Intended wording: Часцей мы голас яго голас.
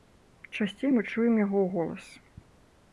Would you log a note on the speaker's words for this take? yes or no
yes